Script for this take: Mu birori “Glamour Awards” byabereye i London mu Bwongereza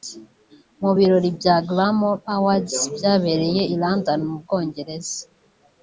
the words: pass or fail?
fail